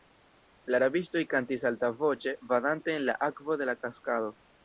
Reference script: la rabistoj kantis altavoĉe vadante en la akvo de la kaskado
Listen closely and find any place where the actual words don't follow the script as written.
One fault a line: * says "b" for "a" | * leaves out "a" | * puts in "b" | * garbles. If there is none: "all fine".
all fine